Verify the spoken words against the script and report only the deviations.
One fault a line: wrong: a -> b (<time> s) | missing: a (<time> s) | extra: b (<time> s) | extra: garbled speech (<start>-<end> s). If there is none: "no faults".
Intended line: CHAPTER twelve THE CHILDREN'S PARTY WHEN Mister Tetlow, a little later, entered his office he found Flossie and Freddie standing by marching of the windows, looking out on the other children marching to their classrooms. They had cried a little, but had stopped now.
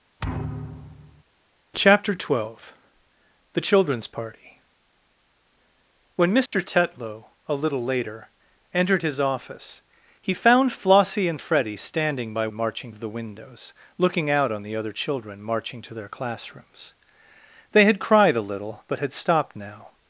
no faults